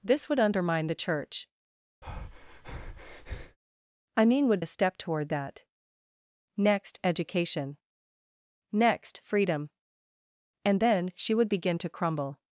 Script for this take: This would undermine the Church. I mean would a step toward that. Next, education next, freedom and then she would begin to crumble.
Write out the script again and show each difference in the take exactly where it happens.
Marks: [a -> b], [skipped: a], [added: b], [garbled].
This would undermine the Church. I mean would a step toward that. Next, education next, freedom and then she would begin to crumble.